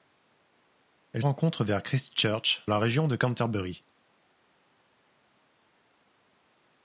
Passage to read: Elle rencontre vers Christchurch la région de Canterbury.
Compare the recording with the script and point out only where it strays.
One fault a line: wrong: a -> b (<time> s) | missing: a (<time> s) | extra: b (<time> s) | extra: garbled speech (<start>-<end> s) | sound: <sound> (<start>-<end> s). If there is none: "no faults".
no faults